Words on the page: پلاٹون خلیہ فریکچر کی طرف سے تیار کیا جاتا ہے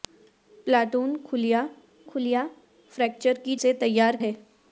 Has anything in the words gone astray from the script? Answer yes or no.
yes